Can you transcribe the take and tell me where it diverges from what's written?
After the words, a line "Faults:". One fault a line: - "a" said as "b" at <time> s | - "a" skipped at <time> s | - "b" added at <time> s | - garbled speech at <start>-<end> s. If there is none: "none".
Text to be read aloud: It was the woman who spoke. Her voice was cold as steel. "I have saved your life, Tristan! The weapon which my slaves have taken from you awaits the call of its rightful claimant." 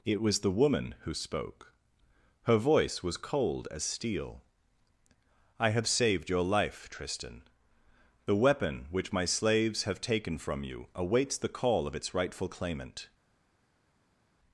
It was the woman who spoke. Her voice was cold as steel. "I have saved your life, Tristan! The weapon which my slaves have taken from you awaits the call of its rightful claimant."
Faults:
none